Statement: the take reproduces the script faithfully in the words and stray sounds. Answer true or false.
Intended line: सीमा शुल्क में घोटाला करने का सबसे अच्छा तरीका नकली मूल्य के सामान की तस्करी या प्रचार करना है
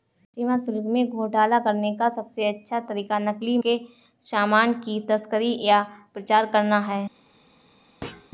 false